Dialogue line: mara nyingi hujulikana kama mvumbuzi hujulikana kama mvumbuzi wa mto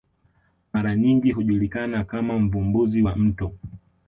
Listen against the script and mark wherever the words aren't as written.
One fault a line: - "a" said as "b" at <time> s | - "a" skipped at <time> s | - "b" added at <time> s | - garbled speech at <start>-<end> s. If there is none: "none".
- "hujulikana kama mvumbuzi" skipped at 3.0 s